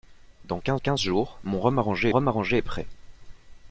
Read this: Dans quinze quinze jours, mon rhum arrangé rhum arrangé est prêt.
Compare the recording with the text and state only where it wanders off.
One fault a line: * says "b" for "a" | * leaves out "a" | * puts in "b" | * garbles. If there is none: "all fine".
all fine